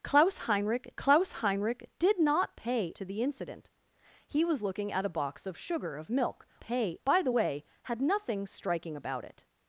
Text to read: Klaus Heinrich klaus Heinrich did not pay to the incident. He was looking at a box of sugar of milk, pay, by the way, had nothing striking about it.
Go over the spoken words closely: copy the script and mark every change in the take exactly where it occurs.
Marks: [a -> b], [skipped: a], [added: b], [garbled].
Klaus Heinrich klaus Heinrich did not pay to the incident. He was looking at a box of sugar of milk, pay, by the way, had nothing striking about it.